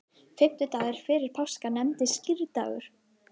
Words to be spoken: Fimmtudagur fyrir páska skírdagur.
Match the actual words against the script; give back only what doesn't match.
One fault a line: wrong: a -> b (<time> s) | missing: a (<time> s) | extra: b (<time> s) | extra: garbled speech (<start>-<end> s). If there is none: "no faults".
extra: nefnist (1.8 s)